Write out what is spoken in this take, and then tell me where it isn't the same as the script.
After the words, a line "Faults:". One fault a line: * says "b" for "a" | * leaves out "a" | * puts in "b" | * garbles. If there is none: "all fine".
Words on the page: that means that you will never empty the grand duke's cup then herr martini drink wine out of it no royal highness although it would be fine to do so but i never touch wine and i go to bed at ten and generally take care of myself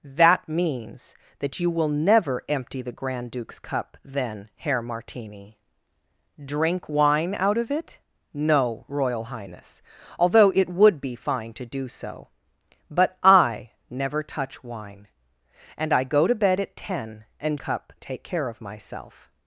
that means that you will never empty the grand duke's cup then herr martini drink wine out of it no royal highness although it would be fine to do so but i never touch wine and i go to bed at ten and cup take care of myself
Faults:
* says "cup" for "generally"